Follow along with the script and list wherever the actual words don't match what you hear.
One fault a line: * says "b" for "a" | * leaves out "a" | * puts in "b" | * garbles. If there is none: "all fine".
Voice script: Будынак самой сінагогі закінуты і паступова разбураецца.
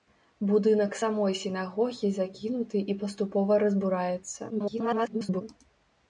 * garbles